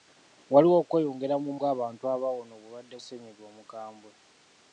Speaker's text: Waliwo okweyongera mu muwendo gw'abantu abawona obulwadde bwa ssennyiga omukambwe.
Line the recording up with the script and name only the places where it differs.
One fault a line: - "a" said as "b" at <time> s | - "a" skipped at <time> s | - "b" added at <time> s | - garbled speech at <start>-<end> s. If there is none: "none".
- "muwendo" skipped at 1.5 s
- "bwa" skipped at 3.0 s